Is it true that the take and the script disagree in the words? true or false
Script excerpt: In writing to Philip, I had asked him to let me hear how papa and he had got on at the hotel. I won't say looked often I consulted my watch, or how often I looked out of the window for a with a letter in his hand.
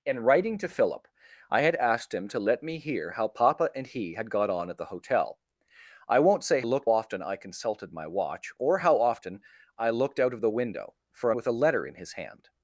false